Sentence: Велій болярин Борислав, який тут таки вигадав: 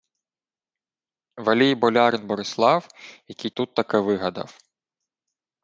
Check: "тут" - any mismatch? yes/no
no